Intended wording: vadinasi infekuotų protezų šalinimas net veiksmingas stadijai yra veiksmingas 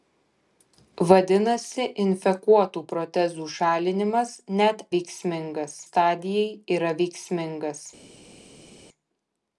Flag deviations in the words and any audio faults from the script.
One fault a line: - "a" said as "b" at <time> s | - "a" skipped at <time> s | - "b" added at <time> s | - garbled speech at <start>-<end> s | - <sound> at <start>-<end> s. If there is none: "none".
none